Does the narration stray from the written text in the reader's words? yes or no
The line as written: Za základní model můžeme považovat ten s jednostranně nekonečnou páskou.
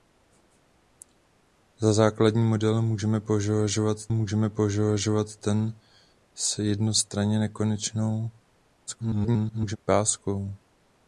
yes